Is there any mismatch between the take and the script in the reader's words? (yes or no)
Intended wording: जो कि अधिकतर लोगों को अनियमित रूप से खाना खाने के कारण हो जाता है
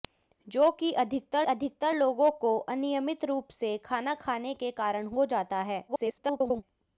yes